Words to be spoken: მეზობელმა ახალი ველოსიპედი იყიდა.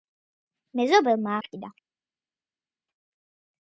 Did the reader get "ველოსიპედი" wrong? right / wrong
wrong